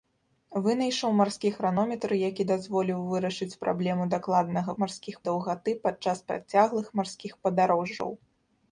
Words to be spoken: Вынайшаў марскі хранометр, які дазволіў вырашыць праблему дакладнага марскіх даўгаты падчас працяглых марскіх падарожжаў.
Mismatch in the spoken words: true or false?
false